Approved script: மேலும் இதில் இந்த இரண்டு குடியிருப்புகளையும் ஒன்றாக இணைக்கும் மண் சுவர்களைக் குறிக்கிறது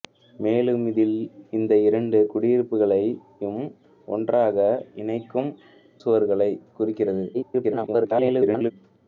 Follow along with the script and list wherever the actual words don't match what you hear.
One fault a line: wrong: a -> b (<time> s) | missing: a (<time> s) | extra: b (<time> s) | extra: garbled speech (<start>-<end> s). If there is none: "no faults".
missing: மண் (5.5 s)
extra: garbled speech (7.3-8.7 s)